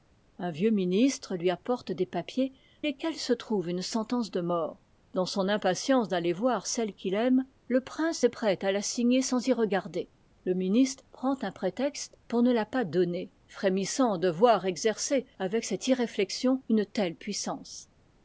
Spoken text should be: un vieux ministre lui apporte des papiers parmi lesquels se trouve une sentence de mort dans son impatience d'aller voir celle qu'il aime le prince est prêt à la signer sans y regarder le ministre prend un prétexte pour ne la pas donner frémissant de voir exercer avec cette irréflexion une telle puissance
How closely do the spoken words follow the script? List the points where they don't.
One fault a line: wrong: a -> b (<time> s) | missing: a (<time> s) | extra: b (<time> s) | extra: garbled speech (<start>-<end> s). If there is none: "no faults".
missing: parmi (2.5 s)